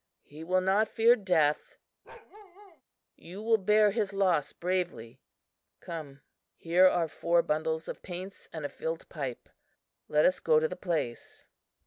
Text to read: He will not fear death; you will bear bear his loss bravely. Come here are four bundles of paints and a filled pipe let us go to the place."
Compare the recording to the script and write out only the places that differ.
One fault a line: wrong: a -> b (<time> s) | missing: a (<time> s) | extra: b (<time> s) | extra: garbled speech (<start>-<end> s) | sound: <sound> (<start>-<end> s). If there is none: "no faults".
sound: bark (2.0-2.8 s)
missing: bear (3.9 s)